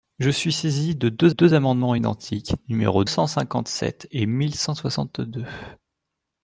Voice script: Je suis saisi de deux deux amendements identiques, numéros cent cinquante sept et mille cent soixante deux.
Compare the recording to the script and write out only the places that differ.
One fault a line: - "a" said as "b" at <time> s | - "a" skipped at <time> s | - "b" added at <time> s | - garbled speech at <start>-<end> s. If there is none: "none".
none